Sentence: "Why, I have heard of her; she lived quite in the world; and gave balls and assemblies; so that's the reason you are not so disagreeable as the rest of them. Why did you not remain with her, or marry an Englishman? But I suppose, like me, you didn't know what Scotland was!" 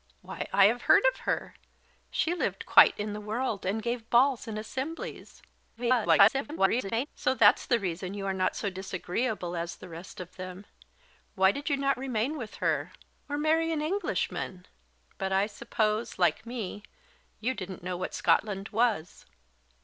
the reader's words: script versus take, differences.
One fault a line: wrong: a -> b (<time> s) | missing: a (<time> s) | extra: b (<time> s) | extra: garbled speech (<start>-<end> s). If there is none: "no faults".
extra: garbled speech (5.8-7.1 s)